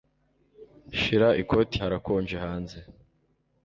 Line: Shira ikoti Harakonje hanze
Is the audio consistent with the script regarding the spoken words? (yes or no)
yes